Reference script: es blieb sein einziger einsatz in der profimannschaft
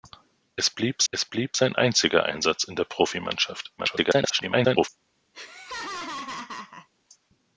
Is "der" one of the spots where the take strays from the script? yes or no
no